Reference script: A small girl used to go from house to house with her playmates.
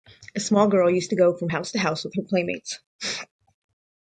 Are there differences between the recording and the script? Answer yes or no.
no